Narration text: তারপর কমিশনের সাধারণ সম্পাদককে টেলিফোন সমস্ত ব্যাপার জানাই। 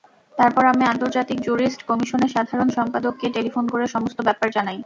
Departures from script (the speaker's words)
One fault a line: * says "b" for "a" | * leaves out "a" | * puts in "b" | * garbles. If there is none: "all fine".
* puts in "আমি আন্তর্জাতিক জুরিস্ট"
* puts in "করে"